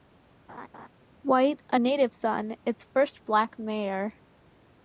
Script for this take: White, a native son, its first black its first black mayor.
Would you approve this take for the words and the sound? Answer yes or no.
no